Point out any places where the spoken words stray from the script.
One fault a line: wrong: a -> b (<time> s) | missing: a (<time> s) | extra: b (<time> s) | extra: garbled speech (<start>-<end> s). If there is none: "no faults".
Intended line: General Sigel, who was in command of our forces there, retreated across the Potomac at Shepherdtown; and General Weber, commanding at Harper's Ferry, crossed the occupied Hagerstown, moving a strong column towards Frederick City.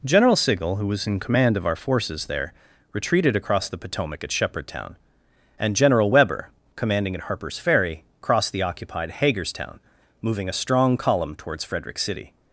no faults